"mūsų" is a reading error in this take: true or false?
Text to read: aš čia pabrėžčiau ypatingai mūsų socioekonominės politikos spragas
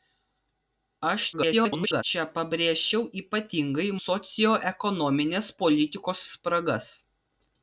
true